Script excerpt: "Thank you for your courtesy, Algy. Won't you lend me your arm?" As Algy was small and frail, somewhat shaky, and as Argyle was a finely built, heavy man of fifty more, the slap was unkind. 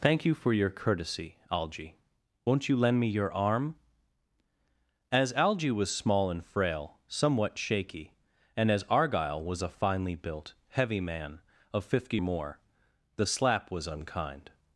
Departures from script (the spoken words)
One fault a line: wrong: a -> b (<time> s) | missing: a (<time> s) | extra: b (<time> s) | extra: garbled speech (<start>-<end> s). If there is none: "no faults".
no faults